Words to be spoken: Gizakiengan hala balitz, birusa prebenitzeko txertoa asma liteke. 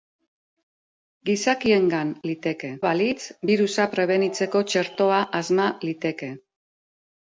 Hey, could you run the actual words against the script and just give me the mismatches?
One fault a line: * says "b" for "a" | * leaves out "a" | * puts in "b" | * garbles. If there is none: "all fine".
* says "liteke" for "hala"